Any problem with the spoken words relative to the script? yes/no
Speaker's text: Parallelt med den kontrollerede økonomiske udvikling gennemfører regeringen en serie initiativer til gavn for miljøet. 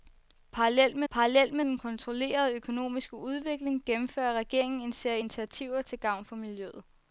yes